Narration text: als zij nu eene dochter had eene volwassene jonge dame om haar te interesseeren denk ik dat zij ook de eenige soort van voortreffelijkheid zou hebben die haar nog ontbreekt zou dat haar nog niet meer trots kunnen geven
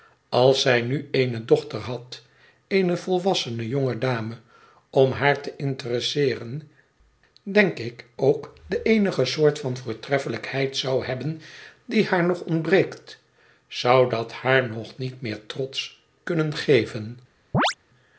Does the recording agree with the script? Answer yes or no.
no